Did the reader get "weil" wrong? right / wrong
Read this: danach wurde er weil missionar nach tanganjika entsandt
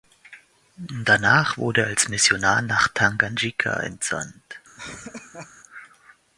wrong